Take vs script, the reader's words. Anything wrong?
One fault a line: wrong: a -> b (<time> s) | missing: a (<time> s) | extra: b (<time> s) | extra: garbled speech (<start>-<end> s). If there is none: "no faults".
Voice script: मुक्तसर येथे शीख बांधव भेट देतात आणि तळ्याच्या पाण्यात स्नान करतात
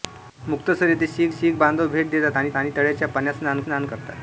extra: शीख (1.3 s)
extra: आणि (2.6 s)
extra: स्नान (3.6 s)